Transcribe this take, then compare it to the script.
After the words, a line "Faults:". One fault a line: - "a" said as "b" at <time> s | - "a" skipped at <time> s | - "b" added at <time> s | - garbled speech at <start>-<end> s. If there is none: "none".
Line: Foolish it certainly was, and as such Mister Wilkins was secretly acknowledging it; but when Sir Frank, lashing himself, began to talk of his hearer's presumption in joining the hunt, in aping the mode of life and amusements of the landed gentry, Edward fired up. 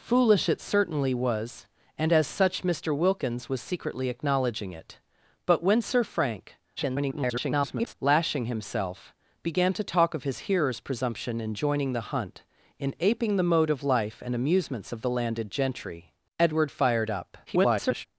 Foolish it certainly was, and as such Mister Wilkins was secretly acknowledging it; but when Sir Frank, [garbled] lashing himself, began to talk of his hearer's presumption in joining the hunt, in aping the mode of life and amusements of the landed gentry, Edward fired up. [garbled]
Faults:
- garbled speech at 6.8-7.9 s
- garbled speech at 17.5-18.1 s